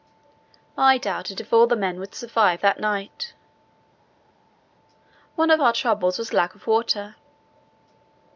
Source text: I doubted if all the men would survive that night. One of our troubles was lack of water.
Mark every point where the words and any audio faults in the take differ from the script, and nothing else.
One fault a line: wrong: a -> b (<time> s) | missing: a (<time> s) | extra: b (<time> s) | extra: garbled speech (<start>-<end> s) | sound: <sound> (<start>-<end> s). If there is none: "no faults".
no faults